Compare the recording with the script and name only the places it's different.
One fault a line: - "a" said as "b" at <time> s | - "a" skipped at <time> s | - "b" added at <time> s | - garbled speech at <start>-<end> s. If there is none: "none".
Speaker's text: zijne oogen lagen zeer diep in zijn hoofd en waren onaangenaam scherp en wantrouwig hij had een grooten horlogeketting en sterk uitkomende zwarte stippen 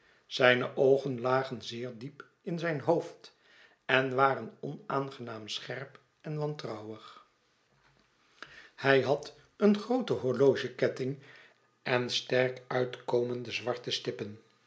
none